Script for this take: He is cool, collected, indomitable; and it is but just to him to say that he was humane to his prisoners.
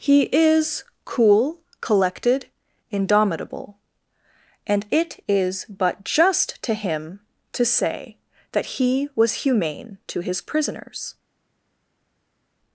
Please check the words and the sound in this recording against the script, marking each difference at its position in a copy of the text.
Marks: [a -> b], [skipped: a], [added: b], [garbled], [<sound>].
He is cool, collected, indomitable; and it is but just to him to say that he was humane to his prisoners.